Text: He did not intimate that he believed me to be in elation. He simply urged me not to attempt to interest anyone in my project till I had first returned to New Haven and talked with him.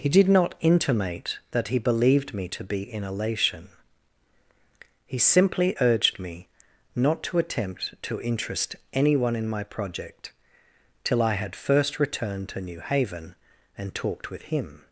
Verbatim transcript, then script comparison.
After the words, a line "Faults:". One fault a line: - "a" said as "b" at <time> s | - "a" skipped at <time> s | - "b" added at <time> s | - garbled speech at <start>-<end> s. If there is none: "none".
He did not intimate that he believed me to be in elation. He simply urged me not to attempt to interest anyone in my project till I had first returned to New Haven and talked with him.
Faults:
none